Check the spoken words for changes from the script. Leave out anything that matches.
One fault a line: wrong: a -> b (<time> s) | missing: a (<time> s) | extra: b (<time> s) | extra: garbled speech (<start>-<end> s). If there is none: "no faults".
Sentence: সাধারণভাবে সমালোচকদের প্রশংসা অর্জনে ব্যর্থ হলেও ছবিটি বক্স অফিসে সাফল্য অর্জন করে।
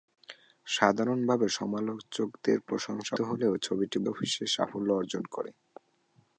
missing: অর্জনে ব্যর্থ (3.1 s)
missing: বক্স (4.0 s)